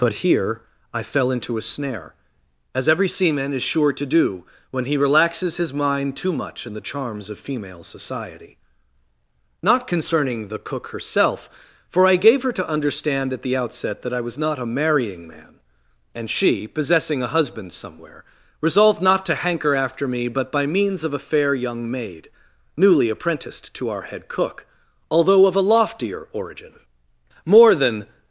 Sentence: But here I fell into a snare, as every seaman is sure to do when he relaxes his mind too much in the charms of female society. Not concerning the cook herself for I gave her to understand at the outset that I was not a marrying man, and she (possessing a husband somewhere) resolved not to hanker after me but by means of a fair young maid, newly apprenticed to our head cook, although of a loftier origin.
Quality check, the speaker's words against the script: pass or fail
fail